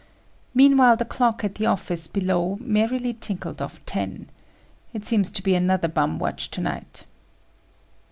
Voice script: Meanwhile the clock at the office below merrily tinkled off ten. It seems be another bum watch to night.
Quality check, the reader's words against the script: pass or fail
fail